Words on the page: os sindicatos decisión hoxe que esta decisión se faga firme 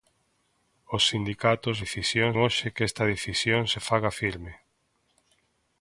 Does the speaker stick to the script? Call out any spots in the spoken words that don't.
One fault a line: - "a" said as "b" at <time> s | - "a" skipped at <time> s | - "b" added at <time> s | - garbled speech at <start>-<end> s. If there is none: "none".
none